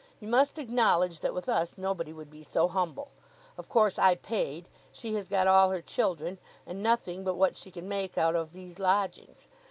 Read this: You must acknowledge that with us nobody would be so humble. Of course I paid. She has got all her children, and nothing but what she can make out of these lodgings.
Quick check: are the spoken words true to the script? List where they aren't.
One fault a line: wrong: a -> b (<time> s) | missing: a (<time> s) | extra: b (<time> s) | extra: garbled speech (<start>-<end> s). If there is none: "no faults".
no faults